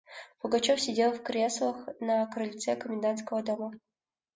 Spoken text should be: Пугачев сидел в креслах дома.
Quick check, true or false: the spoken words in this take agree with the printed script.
false